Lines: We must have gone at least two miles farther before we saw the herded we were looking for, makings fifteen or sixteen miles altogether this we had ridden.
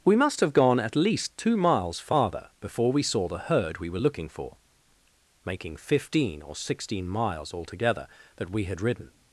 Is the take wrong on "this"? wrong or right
wrong